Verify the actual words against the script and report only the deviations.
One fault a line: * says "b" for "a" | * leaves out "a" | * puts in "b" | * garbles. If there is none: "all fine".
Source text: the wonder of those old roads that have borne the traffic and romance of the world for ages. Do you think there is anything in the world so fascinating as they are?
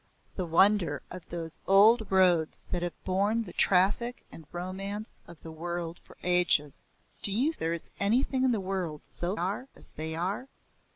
* leaves out "think"
* says "are" for "fascinating"